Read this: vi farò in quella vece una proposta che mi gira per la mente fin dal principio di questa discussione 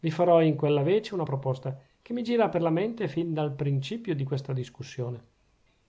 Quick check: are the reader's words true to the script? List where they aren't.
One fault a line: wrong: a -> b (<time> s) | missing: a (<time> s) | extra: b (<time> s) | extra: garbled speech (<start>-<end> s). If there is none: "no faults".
no faults